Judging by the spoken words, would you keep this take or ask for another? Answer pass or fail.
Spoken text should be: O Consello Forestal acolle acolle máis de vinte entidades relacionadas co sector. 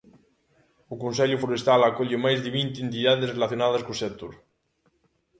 fail